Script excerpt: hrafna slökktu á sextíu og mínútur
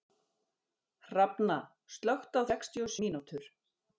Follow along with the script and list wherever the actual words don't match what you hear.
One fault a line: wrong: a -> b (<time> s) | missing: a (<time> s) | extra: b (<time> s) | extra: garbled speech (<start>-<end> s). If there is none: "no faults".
no faults